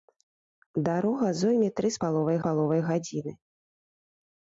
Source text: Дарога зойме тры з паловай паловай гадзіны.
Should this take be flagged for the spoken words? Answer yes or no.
no